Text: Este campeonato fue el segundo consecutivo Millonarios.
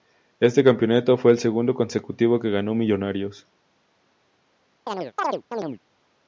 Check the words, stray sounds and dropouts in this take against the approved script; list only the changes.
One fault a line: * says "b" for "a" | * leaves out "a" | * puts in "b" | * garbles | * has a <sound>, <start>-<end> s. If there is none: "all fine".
* puts in "que ganó"
* has a chirp, 4.9-5.8 s